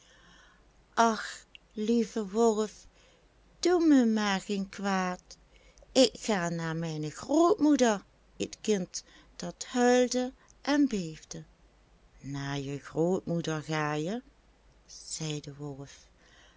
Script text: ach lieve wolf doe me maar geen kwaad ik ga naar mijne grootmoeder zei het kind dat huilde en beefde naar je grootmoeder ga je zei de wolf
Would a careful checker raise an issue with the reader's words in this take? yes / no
yes